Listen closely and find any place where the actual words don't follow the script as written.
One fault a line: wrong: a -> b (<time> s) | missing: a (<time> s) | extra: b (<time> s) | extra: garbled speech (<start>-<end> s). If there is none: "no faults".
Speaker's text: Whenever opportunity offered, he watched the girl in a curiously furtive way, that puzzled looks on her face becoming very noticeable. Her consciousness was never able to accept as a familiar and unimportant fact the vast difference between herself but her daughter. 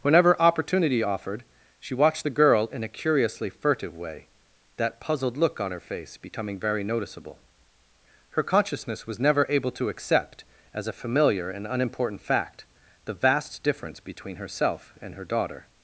wrong: he -> she (1.8 s)
wrong: looks -> look (5.4 s)
wrong: but -> and (15.0 s)